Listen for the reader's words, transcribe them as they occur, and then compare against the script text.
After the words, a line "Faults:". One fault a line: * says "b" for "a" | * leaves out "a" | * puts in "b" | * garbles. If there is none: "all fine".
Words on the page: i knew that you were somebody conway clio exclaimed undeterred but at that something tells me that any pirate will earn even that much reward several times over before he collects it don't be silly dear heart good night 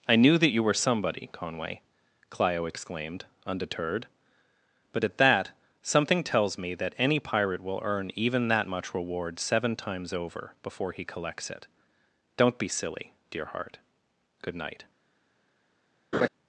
i knew that you were somebody conway clio exclaimed undeterred but at that something tells me that any pirate will earn even that much reward seven times over before he collects it don't be silly dear heart good night
Faults:
* says "seven" for "several"